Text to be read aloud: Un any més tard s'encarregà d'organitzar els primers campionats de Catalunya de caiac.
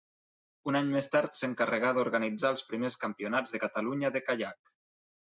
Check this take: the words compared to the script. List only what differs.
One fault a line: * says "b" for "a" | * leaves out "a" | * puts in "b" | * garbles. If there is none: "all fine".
all fine